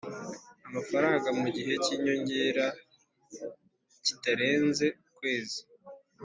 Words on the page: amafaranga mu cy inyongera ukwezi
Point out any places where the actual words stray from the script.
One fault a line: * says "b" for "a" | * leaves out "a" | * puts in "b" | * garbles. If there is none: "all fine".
* puts in "gihe"
* puts in "kitarenze"